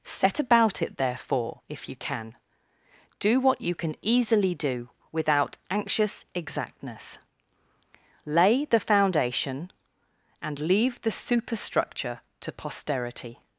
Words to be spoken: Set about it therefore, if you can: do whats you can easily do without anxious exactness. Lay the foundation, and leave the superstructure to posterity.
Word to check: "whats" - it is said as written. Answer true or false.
false